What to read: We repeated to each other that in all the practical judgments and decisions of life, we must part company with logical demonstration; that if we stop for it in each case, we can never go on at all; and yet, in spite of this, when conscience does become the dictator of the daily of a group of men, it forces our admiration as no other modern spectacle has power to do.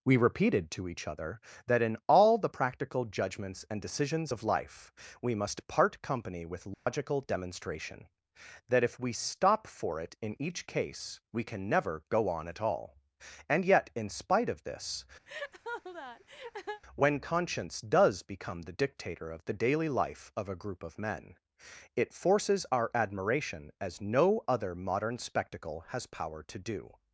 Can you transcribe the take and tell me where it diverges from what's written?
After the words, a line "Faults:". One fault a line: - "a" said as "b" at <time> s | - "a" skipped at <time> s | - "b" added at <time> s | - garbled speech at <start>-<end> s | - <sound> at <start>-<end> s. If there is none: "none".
We repeated to each other that in all the practical judgments and decisions of life, we must part company with logical demonstration; that if we stop for it in each case, we can never go on at all; and yet, in spite of this, when conscience does become the dictator of the daily life of a group of men, it forces our admiration as no other modern spectacle has power to do.
Faults:
- dropout at 6.7-6.9 s
- laugh at 15.3-16.8 s
- "life" added at 19.9 s